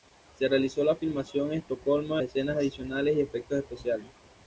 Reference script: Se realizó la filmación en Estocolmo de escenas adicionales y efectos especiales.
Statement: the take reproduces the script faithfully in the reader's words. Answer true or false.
true